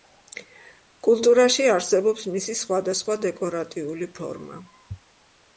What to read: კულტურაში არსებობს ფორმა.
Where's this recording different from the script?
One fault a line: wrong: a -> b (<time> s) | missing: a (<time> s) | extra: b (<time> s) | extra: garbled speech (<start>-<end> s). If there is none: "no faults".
extra: მისი სხვადასხვა დეკორატიული (2.4 s)